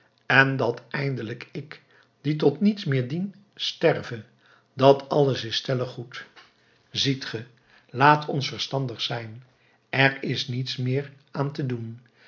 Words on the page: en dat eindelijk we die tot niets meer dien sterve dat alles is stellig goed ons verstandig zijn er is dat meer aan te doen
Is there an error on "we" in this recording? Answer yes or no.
yes